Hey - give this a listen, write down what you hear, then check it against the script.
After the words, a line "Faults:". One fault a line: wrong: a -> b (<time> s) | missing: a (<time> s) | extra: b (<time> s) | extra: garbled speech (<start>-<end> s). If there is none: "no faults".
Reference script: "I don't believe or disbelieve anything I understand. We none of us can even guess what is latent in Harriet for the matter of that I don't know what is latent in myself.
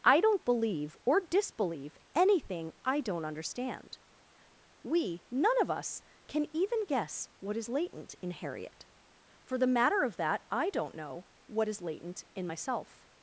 "I don't believe or disbelieve anything I don't understand. We none of us can even guess what is latent in Harriet for the matter of that I don't know what is latent in myself.
Faults:
extra: don't (3.0 s)